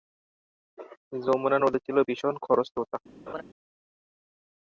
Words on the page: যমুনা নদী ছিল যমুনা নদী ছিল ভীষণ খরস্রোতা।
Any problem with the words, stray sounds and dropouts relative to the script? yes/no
yes